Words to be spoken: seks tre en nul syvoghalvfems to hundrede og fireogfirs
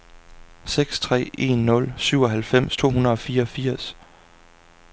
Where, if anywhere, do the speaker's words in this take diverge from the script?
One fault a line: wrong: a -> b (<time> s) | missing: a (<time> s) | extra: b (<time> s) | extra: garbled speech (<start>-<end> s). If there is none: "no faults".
no faults